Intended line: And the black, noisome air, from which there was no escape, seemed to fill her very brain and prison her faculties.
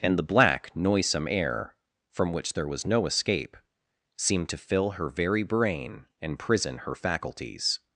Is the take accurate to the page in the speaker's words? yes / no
yes